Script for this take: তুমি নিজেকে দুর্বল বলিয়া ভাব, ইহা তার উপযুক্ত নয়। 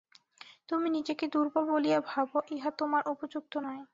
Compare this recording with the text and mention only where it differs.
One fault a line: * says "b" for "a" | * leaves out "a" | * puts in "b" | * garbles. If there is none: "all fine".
* says "তোমার" for "তার"